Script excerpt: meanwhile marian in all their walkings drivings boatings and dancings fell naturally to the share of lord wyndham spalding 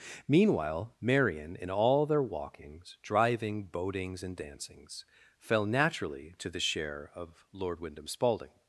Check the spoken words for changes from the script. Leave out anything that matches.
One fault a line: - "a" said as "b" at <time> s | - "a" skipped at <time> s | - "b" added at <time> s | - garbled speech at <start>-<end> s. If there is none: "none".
- "drivings" said as "driving" at 3.0 s